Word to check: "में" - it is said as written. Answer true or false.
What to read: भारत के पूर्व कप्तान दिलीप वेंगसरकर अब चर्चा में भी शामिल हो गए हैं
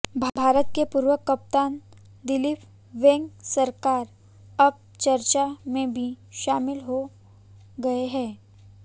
true